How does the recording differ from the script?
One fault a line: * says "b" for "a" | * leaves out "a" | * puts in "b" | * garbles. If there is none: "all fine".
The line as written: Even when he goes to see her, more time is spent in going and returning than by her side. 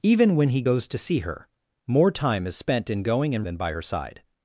* leaves out "returning"